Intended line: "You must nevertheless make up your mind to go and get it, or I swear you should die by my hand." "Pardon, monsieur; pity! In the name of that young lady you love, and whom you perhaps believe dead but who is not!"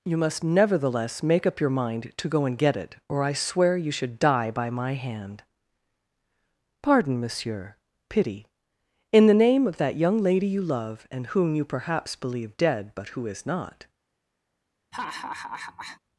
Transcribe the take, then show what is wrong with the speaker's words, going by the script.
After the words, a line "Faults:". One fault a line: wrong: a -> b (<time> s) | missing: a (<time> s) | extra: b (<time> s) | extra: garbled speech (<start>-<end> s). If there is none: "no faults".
"You must nevertheless make up your mind to go and get it, or I swear you should die by my hand." "Pardon, monsieur; pity! In the name of that young lady you love, and whom you perhaps believe dead but who is not!"
Faults:
no faults